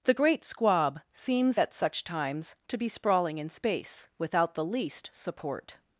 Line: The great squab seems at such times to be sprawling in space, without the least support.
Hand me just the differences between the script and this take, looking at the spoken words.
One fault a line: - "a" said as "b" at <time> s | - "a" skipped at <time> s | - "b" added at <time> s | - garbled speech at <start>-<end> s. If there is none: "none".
none